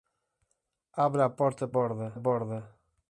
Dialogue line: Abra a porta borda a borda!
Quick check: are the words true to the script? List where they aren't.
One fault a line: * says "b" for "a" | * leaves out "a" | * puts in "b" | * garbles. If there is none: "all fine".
all fine